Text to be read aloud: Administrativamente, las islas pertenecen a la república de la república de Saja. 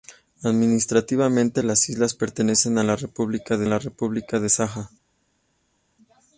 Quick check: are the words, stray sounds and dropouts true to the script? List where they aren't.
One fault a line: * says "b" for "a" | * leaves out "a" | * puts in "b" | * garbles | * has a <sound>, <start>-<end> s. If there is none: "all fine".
all fine